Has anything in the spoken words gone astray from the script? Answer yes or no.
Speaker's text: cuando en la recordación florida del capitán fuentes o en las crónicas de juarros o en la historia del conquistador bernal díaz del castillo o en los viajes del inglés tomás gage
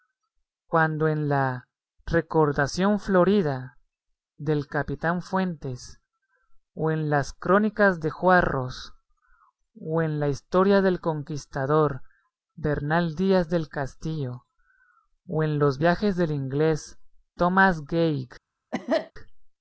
no